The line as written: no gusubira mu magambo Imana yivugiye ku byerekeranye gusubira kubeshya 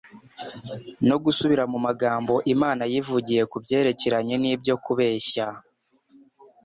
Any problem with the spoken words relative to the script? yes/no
yes